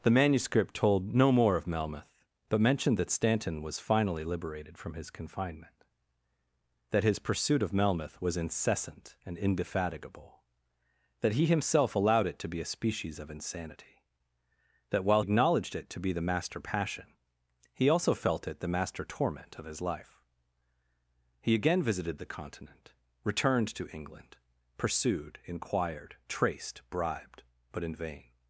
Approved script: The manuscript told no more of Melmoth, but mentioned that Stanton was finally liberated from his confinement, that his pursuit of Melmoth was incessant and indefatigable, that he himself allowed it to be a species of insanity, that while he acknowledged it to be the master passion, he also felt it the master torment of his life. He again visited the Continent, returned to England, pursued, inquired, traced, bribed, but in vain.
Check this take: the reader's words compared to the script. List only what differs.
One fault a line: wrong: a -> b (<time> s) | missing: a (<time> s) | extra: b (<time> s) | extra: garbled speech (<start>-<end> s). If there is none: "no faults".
missing: he (15.2 s)